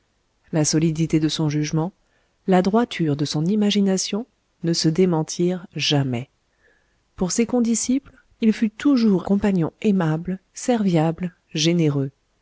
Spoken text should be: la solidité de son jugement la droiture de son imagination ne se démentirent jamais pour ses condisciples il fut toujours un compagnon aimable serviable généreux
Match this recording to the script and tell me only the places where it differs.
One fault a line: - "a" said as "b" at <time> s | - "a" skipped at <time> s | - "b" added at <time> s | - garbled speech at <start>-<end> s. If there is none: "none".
- "un" skipped at 9.3 s